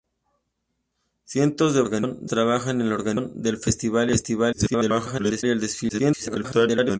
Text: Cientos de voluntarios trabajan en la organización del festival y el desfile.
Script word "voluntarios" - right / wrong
wrong